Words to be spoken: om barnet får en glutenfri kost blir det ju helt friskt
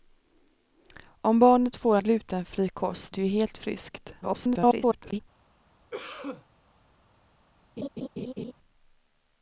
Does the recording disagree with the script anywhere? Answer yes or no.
yes